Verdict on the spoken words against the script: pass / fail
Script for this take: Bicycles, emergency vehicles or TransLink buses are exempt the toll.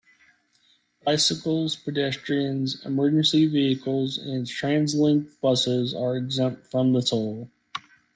fail